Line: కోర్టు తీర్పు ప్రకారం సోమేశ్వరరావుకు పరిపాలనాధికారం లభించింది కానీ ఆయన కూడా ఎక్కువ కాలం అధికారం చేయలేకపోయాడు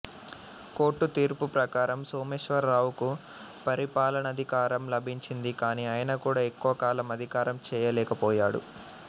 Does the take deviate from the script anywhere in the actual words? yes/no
no